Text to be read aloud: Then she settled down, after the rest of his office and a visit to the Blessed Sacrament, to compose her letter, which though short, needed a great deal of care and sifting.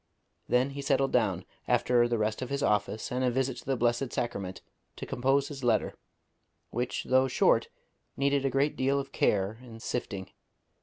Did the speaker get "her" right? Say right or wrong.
wrong